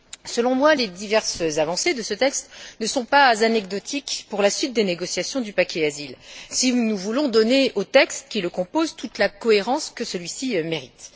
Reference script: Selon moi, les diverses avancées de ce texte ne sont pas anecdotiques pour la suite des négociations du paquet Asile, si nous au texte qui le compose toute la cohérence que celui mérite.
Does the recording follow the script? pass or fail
fail